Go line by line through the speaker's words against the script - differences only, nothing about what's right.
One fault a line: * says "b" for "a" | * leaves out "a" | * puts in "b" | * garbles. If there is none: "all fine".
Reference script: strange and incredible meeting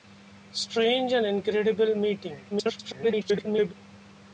* garbles